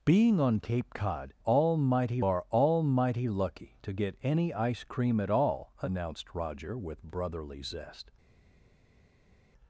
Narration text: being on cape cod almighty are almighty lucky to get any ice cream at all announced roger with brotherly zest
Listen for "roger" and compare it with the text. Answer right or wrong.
right